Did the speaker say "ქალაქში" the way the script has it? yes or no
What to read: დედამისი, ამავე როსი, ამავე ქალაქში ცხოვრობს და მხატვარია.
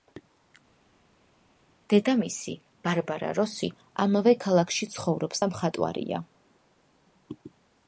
yes